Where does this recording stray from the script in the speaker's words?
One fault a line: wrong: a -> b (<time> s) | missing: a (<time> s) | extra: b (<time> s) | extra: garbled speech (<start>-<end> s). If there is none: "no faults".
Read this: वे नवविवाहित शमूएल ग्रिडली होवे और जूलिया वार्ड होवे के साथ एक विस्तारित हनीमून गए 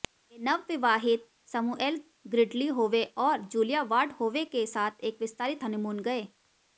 no faults